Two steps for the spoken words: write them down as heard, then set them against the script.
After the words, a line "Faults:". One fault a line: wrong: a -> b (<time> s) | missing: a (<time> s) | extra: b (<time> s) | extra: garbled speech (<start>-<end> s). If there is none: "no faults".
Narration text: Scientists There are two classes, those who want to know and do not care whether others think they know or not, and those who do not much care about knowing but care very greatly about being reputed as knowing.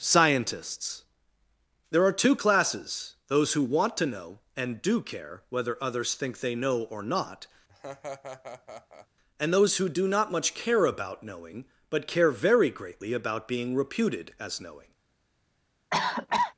Scientists There are two classes, those who want to know and do care whether others think they know or not, and those who do not much care about knowing but care very greatly about being reputed as knowing.
Faults:
missing: not (5.0 s)